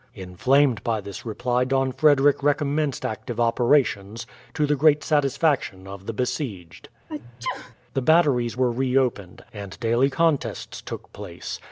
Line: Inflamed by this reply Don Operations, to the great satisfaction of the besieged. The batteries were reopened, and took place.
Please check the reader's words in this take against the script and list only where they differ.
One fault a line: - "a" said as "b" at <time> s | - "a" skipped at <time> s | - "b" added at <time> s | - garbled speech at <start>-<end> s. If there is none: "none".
- "Frederick recommenced active" added at 1.9 s
- "daily contests" added at 9.8 s